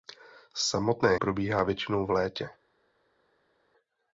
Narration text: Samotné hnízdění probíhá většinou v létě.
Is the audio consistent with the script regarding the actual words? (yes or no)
no